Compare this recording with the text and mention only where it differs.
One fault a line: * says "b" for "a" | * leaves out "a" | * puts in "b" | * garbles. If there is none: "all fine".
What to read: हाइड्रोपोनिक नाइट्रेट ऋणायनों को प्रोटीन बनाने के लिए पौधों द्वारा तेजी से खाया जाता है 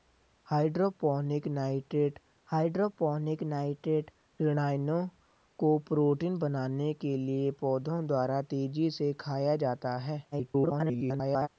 * puts in "हाइड्रोपोनिक नाइट्रेट"
* garbles